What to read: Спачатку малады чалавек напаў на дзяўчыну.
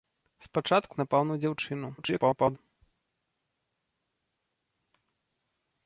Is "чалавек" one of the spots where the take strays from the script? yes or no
yes